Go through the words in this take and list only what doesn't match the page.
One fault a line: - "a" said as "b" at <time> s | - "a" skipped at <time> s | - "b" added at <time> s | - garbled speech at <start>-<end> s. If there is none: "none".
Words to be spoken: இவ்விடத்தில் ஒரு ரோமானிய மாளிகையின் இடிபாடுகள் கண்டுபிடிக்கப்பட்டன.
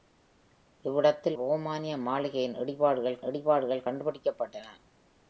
- "ஒரு" skipped at 1.4 s
- "இடிபாடுகள்" added at 3.2 s